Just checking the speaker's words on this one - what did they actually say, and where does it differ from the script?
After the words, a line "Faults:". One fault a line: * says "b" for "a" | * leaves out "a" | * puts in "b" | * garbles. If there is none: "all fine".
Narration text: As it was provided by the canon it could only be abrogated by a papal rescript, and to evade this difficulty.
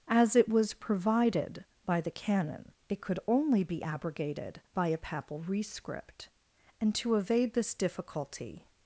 As it was provided by the canon it could only be abrogated by a papal rescript, and to evade this difficulty.
Faults:
all fine